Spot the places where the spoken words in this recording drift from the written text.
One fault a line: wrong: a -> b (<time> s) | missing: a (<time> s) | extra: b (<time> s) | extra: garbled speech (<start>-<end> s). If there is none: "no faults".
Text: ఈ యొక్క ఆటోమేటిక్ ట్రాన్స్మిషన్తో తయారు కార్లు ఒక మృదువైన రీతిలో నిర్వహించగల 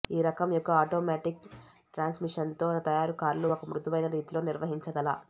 extra: రకం (0.2 s)